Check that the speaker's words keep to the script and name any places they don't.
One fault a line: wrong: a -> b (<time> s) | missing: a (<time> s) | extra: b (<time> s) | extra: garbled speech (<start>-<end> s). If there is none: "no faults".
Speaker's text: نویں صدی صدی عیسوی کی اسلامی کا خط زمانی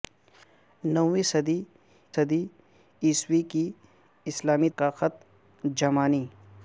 no faults